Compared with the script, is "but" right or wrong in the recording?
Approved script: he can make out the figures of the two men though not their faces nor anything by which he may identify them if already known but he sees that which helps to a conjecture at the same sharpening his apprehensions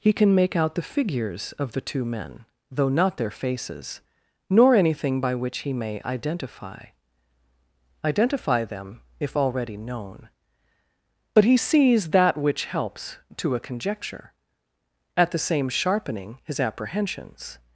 right